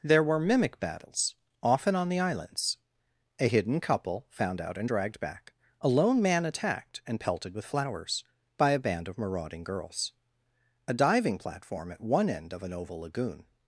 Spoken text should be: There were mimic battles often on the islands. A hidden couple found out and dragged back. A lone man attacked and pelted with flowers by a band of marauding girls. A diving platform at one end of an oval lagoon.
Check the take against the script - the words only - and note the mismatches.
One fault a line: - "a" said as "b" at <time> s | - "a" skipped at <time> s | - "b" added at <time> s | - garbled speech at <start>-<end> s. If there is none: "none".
none